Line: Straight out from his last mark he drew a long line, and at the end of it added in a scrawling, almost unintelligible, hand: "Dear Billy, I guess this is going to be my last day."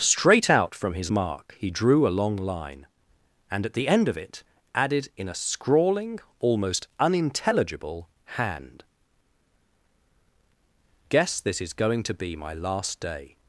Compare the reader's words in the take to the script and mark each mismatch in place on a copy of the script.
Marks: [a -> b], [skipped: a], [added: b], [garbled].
Straight out from his [skipped: last] mark he drew a long line, and at the end of it added in a scrawling, almost unintelligible, hand: [skipped: "Dear Billy, I] guess this is going to be my last day."